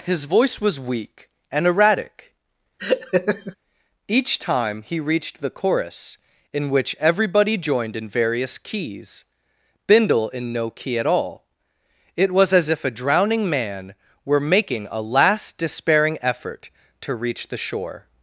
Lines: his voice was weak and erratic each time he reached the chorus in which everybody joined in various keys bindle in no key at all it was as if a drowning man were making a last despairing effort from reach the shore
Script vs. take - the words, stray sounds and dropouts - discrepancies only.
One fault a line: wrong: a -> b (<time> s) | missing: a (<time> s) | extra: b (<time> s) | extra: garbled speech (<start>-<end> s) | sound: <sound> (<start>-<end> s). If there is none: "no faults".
sound: laugh (2.8-3.6 s)
wrong: from -> to (17.0 s)